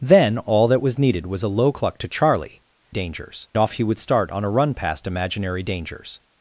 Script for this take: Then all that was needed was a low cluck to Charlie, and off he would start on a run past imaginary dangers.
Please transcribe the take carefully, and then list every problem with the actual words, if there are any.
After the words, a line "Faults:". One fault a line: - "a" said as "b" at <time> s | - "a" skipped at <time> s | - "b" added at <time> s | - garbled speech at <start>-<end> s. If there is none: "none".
Then all that was needed was a low cluck to Charlie, dangers off he would start on a run past imaginary dangers.
Faults:
- "and" said as "dangers" at 2.9 s